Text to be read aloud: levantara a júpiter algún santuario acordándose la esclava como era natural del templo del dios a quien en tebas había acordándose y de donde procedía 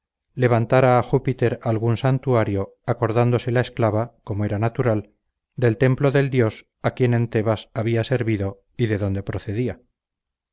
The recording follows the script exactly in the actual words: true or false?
false